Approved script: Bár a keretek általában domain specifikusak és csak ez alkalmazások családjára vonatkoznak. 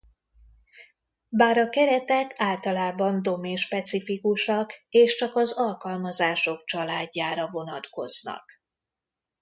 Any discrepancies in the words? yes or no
yes